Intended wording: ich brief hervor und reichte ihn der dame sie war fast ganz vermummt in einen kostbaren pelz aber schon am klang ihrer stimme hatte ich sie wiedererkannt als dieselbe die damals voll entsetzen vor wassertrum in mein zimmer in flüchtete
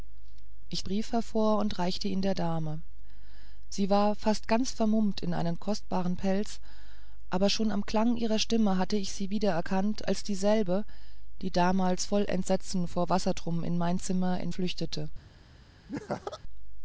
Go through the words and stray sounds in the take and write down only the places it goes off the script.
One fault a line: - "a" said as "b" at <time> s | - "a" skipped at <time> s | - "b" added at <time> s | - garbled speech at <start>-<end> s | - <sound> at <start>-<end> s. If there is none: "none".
- laugh at 15.9-16.4 s